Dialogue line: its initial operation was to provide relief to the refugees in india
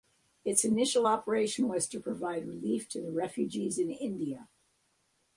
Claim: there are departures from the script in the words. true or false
false